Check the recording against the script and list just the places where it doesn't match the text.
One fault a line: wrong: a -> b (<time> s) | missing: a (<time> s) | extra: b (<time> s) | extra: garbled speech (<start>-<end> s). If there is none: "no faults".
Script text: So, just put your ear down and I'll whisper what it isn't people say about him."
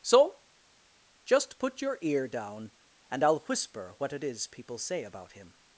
wrong: isn't -> is (4.2 s)